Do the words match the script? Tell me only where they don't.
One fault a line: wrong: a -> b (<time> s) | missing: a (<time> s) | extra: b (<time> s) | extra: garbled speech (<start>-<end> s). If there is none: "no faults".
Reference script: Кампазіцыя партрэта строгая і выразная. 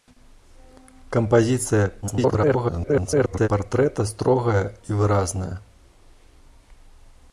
extra: garbled speech (2.0-3.5 s)